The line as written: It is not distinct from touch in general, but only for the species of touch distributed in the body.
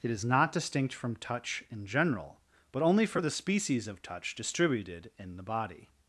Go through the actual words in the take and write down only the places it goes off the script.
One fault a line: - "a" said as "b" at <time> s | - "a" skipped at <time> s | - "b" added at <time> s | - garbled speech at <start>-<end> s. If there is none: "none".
none